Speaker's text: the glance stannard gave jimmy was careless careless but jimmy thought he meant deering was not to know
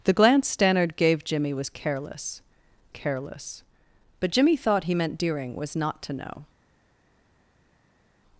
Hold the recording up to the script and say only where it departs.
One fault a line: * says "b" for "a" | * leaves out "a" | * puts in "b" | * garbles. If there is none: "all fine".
all fine